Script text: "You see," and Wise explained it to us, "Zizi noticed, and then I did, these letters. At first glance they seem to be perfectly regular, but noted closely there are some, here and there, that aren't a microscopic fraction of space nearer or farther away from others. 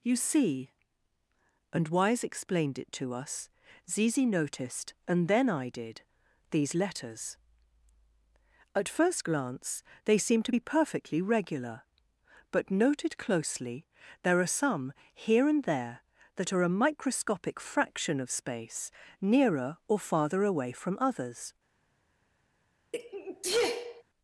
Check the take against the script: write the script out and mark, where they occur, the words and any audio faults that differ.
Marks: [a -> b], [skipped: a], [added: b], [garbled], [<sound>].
"You see," and Wise explained it to us, "Zizi noticed, and then I did, these letters. At first glance they seem to be perfectly regular, but noted closely there are some, here and there, that [aren't -> are] a microscopic fraction of space nearer or farther away from others. [sneeze]